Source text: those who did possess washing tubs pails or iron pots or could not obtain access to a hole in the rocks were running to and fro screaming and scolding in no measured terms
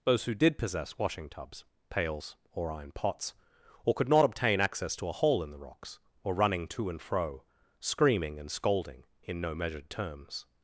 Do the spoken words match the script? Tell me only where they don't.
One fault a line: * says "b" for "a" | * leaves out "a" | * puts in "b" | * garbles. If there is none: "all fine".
all fine